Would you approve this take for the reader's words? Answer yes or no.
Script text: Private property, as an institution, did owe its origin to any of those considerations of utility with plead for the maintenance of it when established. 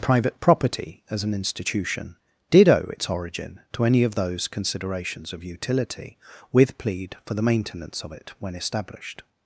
yes